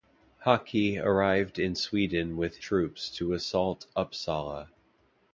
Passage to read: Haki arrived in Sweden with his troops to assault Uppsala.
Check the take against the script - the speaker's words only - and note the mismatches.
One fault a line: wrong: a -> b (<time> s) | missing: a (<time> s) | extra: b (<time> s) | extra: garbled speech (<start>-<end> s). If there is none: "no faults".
missing: his (2.6 s)